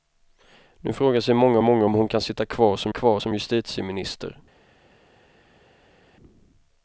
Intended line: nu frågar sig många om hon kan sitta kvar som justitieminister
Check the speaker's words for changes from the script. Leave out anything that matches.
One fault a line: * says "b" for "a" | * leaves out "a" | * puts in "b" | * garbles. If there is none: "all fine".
* puts in "många"
* puts in "kvar som"